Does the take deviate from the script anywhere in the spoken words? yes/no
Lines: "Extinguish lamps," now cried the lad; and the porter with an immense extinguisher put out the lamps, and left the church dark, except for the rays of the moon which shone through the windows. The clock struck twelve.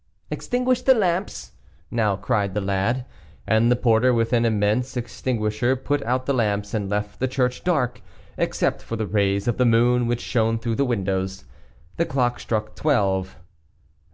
yes